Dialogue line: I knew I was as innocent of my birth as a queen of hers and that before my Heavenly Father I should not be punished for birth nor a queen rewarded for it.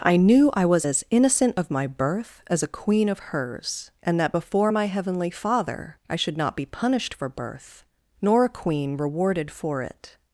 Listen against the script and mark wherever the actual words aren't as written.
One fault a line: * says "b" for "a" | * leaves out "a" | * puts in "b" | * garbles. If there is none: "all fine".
all fine